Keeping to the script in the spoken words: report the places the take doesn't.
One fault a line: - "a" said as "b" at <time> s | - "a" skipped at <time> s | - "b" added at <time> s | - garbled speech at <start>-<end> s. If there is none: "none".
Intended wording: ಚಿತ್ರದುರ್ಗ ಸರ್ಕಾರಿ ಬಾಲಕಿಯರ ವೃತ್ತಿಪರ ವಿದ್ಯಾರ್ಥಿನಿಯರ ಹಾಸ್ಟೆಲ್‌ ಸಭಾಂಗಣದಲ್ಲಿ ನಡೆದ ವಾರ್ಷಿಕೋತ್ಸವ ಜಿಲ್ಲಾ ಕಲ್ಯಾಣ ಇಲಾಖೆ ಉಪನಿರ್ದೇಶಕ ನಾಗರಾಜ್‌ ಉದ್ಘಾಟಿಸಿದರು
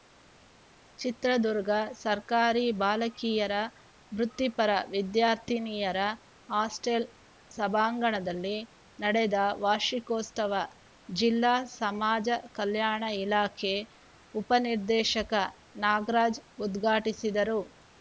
- "ಸಮಾಜ" added at 11.8 s